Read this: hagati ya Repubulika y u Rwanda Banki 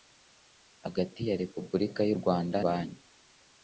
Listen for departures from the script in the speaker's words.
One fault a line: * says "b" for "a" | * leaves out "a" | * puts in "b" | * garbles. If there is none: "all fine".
all fine